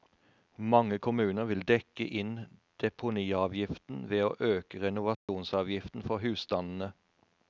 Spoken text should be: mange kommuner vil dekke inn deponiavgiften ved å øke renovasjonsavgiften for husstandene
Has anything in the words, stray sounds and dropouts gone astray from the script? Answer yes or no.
yes